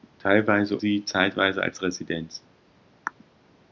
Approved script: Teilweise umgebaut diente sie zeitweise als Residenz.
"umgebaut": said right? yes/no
no